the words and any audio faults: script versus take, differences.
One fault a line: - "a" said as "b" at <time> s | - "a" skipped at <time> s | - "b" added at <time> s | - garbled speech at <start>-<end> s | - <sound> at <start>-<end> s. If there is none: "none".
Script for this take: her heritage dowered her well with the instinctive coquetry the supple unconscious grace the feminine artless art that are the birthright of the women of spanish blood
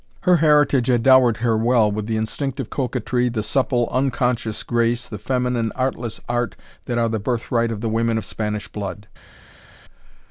- "had" added at 0.9 s